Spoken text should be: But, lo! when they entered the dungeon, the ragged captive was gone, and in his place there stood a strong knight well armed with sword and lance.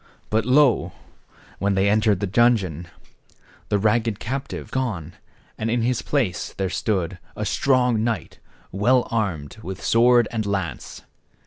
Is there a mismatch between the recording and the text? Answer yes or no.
yes